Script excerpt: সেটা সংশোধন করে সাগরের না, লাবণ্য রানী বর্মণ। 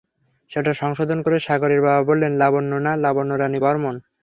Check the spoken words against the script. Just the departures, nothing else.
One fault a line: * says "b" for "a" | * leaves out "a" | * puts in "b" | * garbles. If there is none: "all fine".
* puts in "বাবা বললেন লাবণ্য"